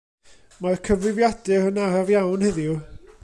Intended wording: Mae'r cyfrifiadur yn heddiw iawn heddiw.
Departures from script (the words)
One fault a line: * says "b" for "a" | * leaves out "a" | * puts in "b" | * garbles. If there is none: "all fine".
* says "araf" for "heddiw"